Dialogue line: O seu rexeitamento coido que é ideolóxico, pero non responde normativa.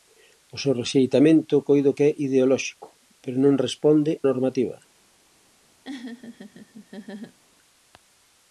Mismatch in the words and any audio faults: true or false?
true